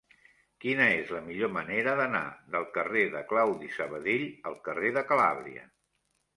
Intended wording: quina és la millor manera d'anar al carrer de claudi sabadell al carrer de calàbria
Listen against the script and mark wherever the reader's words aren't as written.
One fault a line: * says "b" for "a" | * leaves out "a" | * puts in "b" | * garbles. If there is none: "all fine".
* says "del" for "al"